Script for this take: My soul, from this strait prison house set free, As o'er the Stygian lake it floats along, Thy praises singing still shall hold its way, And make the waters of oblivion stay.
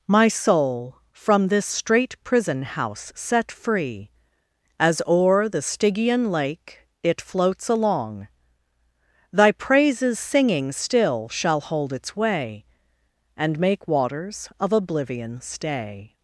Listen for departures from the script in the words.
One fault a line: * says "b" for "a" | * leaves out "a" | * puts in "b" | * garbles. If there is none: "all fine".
* leaves out "the"